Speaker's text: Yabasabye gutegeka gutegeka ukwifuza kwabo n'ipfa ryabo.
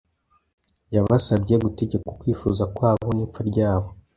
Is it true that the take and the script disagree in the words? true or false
true